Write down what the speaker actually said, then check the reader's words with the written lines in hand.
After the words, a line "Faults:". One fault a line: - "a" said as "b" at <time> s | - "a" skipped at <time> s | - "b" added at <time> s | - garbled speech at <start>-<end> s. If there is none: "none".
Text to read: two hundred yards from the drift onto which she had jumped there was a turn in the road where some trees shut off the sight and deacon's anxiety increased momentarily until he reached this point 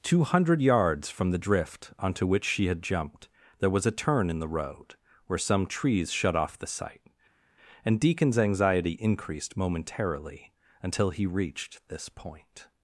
two hundred yards from the drift onto which she had jumped there was a turn in the road where some trees shut off the sight and deacon's anxiety increased momentarily until he reached this point
Faults:
none